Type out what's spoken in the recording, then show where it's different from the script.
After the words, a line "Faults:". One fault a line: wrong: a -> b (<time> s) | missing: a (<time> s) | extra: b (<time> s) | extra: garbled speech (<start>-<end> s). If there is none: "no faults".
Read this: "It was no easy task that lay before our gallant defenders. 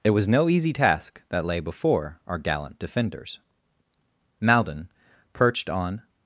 "It was no easy task that lay before our gallant defenders. Maldon, perched on
Faults:
extra: Maldon perched on (4.4 s)